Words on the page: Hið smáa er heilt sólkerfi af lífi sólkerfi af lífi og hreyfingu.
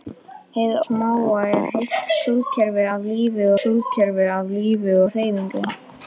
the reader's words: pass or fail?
pass